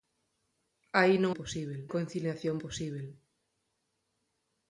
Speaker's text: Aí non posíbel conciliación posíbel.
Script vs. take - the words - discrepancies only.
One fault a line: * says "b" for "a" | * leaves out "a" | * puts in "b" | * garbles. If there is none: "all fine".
all fine